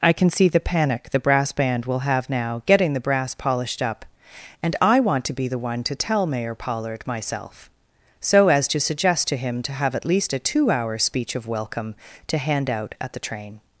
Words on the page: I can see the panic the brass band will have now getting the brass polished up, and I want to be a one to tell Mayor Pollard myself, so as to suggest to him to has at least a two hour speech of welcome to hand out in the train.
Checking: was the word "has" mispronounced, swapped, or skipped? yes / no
yes